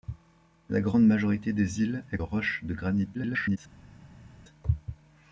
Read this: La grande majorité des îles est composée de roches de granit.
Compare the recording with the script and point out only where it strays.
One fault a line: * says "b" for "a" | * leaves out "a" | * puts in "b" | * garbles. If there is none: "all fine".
* leaves out "composée de"
* garbles